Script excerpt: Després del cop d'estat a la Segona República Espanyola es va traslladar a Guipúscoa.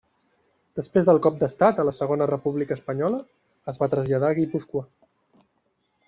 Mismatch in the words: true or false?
false